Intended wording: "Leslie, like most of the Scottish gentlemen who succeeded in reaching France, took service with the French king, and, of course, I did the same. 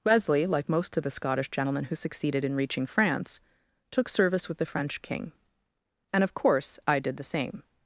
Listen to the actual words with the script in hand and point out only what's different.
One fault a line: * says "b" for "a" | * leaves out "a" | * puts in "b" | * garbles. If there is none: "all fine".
* says "Wesley" for "Leslie"